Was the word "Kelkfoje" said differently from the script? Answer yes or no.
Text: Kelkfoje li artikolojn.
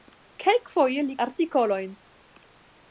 no